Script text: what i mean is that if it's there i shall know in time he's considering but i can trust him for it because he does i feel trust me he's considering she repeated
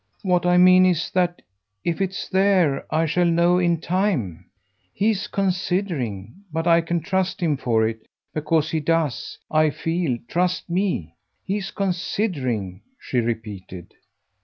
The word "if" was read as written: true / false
true